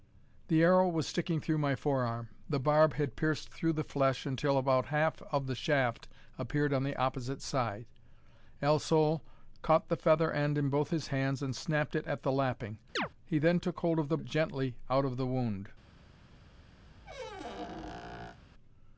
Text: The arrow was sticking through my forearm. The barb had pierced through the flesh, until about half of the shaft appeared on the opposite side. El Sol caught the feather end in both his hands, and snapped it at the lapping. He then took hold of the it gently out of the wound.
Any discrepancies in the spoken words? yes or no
no